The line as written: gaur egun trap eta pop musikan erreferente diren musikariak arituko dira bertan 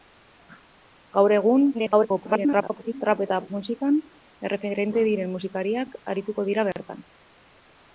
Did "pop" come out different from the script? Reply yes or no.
yes